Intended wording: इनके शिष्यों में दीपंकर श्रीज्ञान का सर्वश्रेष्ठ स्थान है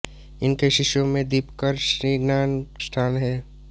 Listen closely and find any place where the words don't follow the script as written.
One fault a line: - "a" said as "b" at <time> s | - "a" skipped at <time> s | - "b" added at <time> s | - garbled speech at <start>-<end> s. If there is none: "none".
- "का सर्वश्रेष्ठ" skipped at 2.6 s